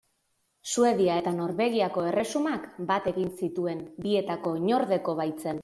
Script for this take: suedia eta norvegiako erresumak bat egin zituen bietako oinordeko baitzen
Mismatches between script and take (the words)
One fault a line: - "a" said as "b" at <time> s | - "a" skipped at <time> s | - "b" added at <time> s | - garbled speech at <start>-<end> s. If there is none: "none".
none